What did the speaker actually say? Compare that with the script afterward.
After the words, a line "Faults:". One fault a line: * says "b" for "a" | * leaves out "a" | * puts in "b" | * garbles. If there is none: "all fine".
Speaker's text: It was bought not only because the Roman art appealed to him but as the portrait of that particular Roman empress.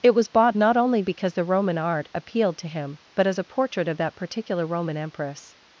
It was bought not only because the Roman art appealed to him but as a portrait of that particular Roman empress.
Faults:
* says "a" for "the"